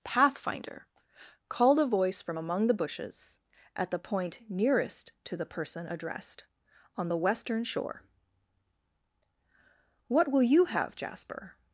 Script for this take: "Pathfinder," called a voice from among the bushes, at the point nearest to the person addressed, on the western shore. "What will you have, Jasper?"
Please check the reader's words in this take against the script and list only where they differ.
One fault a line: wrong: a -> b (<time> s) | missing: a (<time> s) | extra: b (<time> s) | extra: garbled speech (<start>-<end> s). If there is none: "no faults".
no faults